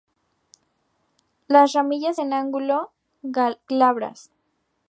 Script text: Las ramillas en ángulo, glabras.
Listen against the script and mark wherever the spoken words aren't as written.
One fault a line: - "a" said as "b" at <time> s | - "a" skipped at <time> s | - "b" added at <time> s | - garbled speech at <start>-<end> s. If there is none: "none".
none